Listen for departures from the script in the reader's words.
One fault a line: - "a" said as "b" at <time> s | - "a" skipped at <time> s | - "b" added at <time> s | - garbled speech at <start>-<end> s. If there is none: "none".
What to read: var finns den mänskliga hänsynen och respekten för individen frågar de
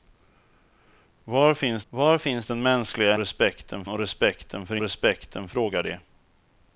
- "var finns" added at 1.9 s
- "hänsynen" said as "respekten" at 3.2 s
- "individen" said as "respekten" at 4.8 s